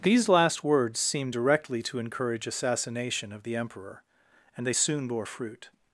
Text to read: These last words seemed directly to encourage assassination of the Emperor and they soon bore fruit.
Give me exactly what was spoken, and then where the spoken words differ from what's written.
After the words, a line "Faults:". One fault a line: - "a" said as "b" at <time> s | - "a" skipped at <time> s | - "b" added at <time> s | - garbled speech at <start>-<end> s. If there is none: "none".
These last words seemed directly to encourage assassination of the Emperor and they soon bore fruit.
Faults:
none